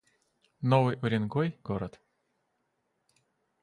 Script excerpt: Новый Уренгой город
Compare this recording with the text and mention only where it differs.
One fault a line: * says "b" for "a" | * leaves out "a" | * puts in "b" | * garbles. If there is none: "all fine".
all fine